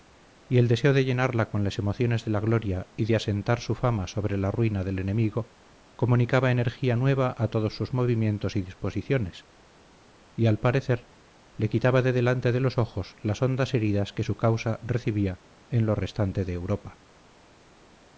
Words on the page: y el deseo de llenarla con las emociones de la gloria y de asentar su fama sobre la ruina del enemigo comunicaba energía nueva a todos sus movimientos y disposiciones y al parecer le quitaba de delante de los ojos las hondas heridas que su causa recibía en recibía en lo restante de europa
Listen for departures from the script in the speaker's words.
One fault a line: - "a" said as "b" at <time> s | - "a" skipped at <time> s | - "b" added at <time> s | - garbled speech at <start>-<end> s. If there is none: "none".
- "recibía en" skipped at 15.8 s